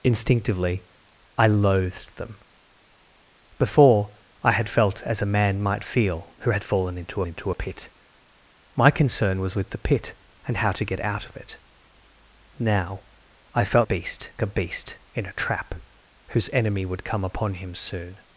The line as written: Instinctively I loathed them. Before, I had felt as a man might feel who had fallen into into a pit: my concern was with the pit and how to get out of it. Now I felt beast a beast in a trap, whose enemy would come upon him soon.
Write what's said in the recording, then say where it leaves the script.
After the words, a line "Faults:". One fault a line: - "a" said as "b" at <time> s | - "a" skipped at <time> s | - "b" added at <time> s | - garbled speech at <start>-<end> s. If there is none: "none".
Instinctively I loathed them. Before, I had felt as a man might feel who had fallen into into a pit: my concern was with the pit and how to get out of it. Now I felt beast a beast in a trap, whose enemy would come upon him soon.
Faults:
none